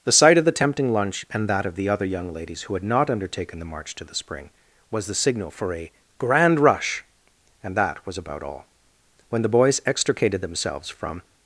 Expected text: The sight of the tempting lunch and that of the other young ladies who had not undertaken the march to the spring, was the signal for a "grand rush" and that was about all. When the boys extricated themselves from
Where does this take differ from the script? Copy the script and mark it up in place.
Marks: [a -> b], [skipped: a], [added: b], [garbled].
The sight of the tempting lunch and that of the other young ladies who had not undertaken the march to the spring, was the signal for a "grand rush" and that was about all. When the boys extricated themselves from